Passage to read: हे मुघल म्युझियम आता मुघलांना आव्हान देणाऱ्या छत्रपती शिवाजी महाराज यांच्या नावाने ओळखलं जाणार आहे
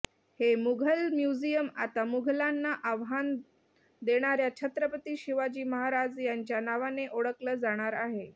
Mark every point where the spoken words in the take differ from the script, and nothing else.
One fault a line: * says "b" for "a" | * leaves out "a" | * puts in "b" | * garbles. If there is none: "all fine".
all fine